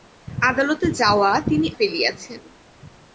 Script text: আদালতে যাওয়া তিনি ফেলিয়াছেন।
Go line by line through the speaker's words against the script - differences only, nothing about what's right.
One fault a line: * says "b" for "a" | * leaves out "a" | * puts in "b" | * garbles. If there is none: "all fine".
all fine